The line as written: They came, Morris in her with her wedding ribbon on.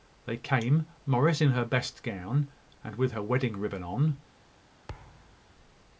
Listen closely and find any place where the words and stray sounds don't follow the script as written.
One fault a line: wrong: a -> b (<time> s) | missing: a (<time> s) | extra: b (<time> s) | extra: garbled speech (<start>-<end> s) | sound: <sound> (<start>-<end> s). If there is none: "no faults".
extra: best gown and (1.7 s)
sound: thud (4.9-5.5 s)